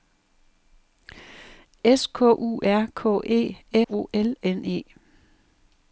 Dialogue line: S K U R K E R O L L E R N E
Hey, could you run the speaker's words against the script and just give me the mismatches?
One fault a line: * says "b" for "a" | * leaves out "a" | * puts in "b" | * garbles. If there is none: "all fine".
* leaves out "R"
* leaves out "L E R"